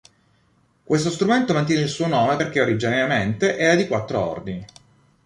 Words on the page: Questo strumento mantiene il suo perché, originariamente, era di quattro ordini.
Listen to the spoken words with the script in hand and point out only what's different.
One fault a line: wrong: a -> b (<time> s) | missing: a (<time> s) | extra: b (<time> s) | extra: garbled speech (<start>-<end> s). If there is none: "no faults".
extra: nome (2.1 s)